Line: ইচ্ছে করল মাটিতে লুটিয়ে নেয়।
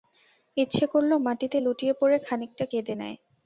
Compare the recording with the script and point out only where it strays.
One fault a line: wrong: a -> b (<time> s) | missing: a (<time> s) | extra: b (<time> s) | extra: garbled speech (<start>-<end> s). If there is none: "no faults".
extra: পড়ে খানিকটা কেঁদে (2.0 s)